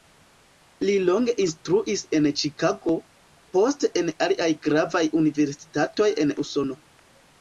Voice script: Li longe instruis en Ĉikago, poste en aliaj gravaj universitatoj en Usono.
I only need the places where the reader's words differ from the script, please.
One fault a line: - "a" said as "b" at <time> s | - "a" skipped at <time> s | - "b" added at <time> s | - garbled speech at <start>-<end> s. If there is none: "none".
none